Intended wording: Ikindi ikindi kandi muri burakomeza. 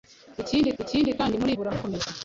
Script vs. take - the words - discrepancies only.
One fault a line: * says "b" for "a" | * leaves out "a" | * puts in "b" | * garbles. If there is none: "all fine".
all fine